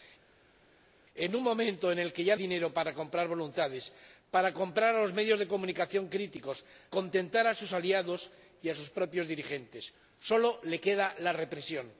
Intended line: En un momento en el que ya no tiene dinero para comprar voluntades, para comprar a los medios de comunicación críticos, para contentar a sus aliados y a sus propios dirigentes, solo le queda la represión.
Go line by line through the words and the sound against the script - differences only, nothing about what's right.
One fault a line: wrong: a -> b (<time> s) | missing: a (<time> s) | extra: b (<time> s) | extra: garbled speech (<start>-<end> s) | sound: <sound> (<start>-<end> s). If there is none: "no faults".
missing: no tiene (2.4 s)
missing: para (6.6 s)